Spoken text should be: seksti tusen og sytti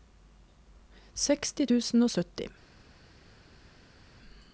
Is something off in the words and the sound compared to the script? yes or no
no